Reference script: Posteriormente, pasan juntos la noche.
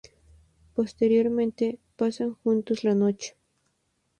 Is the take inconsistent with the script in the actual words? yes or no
no